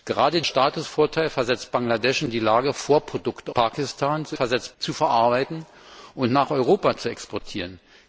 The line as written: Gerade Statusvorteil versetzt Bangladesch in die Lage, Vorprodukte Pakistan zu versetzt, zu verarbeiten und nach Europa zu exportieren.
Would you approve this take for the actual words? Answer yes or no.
yes